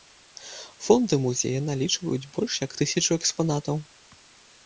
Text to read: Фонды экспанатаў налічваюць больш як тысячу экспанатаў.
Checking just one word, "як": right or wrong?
right